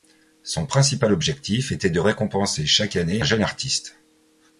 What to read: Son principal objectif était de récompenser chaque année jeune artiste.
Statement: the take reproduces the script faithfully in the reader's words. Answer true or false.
true